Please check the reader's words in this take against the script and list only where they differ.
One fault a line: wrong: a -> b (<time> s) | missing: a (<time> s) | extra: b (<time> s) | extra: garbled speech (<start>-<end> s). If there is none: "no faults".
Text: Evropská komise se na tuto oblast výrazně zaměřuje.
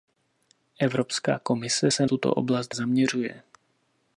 missing: na (2.1 s)
missing: výrazně (2.7 s)